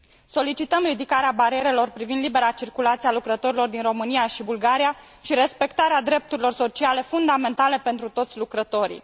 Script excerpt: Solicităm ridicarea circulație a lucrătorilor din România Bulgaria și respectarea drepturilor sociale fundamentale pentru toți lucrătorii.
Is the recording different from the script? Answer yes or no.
yes